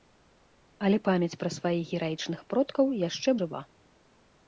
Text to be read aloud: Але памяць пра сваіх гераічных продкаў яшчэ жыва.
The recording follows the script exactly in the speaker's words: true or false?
true